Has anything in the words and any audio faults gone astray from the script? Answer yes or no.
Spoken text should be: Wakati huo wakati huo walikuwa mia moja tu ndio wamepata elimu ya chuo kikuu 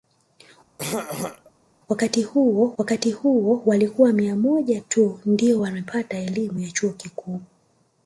yes